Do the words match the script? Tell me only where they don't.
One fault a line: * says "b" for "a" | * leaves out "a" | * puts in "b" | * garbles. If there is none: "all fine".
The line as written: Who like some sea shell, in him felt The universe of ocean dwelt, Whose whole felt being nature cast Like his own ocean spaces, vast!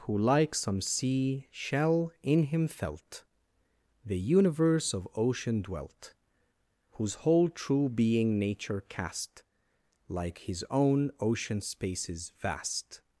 * says "true" for "felt"